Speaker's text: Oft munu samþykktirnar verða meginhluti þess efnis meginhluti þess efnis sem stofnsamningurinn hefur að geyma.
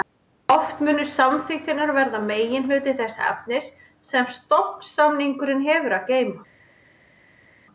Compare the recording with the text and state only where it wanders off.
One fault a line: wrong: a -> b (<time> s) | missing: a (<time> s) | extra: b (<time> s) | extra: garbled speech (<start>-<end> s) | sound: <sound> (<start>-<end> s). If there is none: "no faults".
missing: meginhluti þess efnis (3.7 s)